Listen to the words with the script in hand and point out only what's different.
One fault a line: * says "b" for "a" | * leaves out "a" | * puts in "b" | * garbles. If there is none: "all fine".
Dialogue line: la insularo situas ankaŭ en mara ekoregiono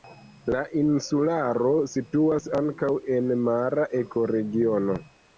all fine